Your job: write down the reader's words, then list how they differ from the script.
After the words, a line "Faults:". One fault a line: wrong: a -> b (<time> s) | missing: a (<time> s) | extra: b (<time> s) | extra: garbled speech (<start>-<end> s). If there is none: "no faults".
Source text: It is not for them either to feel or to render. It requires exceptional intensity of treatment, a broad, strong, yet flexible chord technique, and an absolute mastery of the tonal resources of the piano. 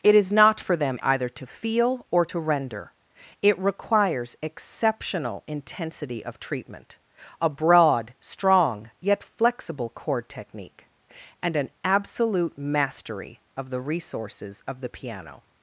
It is not for them either to feel or to render. It requires exceptional intensity of treatment, a broad, strong, yet flexible chord technique, and an absolute mastery of the resources of the piano.
Faults:
missing: tonal (13.8 s)